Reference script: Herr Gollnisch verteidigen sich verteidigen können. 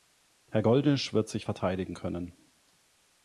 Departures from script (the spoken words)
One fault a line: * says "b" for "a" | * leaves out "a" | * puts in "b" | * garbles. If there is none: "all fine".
* says "wird" for "verteidigen"